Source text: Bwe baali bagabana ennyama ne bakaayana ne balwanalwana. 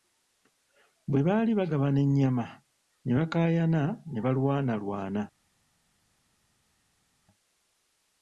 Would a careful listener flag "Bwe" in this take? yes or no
no